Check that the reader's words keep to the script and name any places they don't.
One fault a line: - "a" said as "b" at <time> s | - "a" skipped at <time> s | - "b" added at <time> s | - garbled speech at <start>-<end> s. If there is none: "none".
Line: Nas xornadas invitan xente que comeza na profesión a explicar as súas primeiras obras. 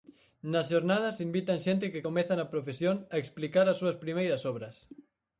none